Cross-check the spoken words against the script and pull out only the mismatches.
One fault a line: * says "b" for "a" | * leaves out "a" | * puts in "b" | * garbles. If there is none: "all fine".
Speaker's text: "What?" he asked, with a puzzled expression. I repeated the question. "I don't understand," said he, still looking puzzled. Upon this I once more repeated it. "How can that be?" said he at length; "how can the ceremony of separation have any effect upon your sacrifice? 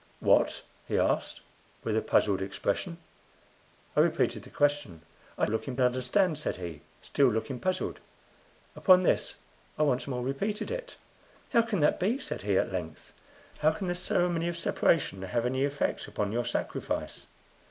* says "looking" for "don't"